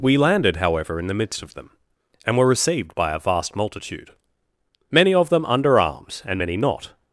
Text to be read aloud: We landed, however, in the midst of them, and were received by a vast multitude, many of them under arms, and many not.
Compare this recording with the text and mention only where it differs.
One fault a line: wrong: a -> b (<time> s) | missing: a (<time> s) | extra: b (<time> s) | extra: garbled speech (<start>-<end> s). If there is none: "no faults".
no faults